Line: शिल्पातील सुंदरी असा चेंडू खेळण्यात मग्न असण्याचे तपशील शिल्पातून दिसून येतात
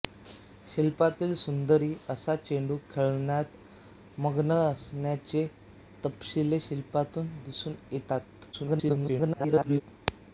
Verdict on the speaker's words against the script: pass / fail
fail